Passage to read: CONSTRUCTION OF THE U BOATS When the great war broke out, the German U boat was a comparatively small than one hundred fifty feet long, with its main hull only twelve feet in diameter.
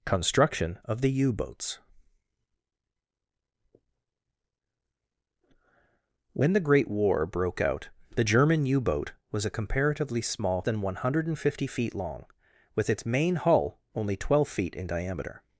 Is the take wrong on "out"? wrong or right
right